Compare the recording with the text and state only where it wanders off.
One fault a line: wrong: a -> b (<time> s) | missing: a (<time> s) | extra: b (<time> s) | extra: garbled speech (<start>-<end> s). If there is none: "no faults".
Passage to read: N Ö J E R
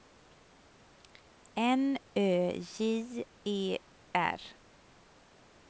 no faults